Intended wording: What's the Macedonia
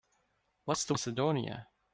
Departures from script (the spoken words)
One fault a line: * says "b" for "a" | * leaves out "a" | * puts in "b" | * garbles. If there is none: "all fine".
all fine